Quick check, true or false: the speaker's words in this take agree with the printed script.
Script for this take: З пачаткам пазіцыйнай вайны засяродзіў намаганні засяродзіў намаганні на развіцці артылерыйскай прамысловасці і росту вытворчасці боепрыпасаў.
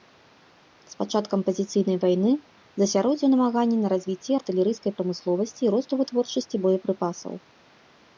false